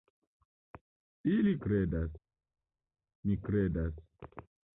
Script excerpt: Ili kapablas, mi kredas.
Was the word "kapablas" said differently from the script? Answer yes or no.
yes